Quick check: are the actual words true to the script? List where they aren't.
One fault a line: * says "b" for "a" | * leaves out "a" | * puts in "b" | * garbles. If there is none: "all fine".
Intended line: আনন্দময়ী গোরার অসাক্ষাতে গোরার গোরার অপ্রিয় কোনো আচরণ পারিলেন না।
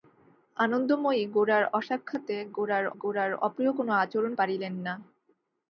all fine